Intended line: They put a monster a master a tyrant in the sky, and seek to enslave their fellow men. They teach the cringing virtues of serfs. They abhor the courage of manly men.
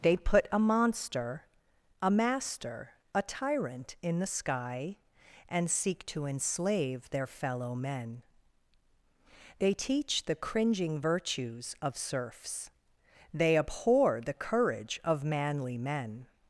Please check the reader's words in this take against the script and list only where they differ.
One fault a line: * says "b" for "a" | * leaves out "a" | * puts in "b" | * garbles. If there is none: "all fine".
all fine